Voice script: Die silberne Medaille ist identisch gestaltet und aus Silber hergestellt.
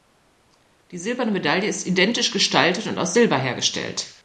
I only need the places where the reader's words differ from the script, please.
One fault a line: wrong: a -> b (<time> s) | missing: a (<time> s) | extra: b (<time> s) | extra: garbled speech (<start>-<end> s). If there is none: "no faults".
no faults